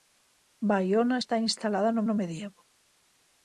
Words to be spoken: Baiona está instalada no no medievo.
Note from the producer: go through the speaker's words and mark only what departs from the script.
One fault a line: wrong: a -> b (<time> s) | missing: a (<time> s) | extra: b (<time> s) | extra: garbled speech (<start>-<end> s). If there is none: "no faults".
no faults